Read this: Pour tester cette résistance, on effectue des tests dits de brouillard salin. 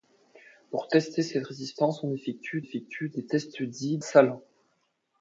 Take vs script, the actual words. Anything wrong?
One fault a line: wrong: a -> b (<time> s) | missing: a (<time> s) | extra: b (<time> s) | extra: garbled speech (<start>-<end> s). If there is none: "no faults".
extra: effectue (2.6 s)
missing: de brouillard (4.0 s)